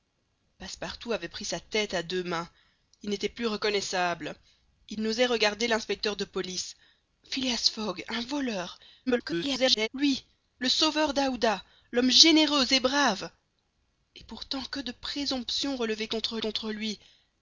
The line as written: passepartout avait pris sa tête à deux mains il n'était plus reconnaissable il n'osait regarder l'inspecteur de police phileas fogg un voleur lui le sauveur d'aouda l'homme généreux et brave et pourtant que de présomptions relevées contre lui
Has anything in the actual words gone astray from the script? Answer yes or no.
yes